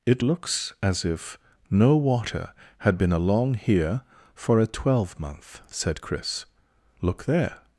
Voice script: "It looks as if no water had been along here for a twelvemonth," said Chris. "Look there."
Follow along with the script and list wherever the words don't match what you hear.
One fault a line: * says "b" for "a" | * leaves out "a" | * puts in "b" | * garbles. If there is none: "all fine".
all fine